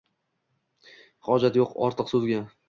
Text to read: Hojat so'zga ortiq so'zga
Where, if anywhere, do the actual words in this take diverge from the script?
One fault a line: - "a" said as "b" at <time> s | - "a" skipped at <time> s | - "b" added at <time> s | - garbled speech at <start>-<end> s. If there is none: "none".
- "so'zga" said as "yo'q" at 1.6 s